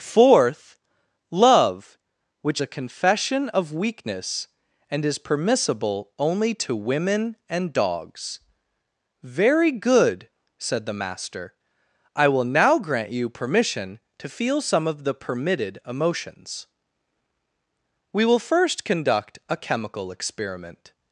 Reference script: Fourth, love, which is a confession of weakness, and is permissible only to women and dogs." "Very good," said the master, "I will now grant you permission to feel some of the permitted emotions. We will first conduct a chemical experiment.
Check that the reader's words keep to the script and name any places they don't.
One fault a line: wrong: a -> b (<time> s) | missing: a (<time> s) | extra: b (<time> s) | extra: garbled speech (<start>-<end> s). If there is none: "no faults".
missing: is (2.6 s)